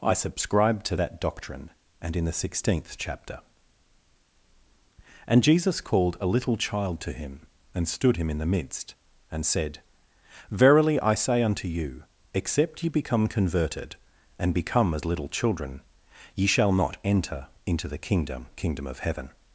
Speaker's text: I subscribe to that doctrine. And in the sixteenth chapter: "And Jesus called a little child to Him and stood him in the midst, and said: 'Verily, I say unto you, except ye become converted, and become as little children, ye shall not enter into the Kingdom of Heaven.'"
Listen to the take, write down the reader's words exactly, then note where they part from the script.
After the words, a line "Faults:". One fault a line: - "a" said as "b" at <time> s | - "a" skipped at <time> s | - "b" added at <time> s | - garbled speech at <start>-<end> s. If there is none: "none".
I subscribe to that doctrine. And in the sixteenth chapter: "And Jesus called a little child to Him and stood him in the midst, and said: 'Verily, I say unto you, except ye become converted, and become as little children, ye shall not enter into the Kingdom Kingdom of Heaven.'"
Faults:
- "Kingdom" added at 18.6 s